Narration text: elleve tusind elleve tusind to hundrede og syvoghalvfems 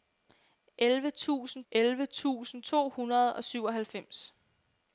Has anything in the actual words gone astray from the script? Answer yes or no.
no